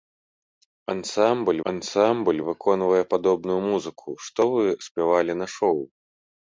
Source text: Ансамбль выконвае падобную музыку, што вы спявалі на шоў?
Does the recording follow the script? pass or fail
fail